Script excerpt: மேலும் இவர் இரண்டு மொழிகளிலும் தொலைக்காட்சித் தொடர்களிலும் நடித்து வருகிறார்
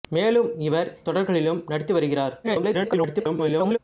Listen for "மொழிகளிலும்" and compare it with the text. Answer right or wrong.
wrong